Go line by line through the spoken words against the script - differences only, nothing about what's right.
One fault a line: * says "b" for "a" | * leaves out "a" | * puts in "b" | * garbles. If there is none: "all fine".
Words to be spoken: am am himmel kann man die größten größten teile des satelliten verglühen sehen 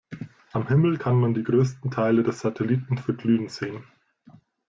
* leaves out "am"
* leaves out "größten"